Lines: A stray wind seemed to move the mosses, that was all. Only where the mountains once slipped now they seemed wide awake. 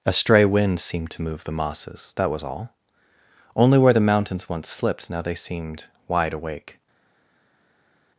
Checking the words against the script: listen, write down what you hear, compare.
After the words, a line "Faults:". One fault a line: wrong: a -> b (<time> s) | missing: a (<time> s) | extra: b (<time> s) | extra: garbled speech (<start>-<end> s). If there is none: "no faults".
A stray wind seemed to move the mosses, that was all. Only where the mountains once slipped now they seemed wide awake.
Faults:
no faults